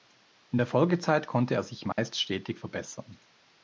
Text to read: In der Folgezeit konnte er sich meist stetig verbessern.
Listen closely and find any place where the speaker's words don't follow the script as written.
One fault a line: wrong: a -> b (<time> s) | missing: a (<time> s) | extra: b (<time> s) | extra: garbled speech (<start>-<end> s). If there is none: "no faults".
no faults